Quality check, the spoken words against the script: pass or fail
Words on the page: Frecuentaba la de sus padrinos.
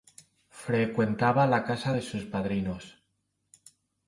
fail